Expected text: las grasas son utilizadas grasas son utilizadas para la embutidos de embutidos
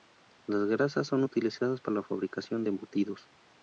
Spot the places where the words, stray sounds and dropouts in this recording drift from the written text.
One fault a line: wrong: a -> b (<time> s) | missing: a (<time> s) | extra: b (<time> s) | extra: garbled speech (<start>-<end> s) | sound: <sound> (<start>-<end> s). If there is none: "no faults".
missing: grasas son utilizadas (1.8 s)
wrong: embutidos -> fabricación (2.0 s)